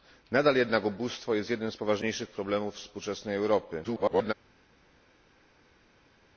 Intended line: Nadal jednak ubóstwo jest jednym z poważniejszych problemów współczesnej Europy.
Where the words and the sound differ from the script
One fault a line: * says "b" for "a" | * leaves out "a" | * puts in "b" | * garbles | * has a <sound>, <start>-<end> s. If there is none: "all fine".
* garbles